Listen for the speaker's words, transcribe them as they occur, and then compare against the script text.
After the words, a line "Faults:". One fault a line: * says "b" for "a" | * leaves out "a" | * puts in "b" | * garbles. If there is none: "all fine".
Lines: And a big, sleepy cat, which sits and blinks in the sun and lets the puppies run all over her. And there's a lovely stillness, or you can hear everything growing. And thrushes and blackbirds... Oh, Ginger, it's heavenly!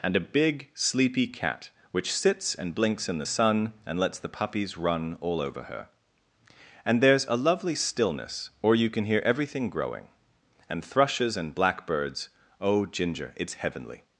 And a big, sleepy cat, which sits and blinks in the sun and lets the puppies run all over her. And there's a lovely stillness, or you can hear everything growing. And thrushes and blackbirds... Oh, Ginger, it's heavenly!
Faults:
all fine